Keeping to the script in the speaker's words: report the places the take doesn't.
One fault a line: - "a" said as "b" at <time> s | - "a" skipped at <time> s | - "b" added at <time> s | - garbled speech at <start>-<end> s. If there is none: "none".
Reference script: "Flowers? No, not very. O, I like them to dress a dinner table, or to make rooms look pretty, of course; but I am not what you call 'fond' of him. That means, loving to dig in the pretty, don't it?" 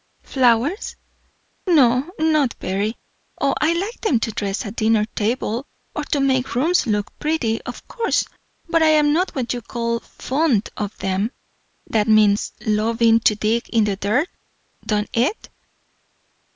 - "him" said as "them" at 11.0 s
- "pretty" said as "dirt" at 13.9 s